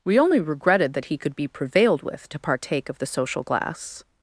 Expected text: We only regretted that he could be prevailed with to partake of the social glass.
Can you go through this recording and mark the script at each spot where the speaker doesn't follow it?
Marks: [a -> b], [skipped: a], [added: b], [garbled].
We only regretted that he could be prevailed with to partake of the social glass.